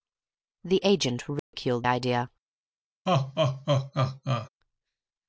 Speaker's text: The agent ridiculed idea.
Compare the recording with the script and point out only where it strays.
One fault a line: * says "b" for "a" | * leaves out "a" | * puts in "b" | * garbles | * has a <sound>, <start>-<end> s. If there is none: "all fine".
* has a dropout, 1.4-1.5 s
* has a laugh, 3.1-4.5 s